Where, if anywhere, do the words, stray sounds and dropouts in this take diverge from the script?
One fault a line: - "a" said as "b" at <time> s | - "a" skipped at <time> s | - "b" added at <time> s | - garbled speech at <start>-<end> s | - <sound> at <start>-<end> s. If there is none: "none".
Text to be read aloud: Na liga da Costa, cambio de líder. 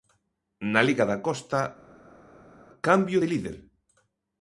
none